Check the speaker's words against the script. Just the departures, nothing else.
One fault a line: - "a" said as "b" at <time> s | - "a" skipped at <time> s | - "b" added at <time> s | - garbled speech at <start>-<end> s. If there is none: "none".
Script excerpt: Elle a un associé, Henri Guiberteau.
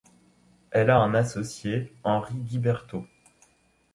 none